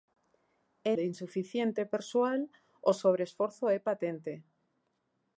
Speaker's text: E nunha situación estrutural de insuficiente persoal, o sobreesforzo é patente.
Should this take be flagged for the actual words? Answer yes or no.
yes